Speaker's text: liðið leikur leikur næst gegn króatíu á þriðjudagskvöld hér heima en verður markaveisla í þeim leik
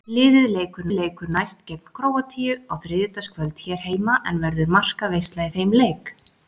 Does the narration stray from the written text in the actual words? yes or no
no